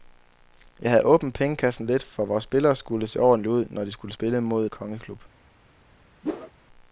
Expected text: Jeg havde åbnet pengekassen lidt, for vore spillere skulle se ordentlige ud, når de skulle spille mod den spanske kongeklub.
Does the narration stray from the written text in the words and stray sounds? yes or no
yes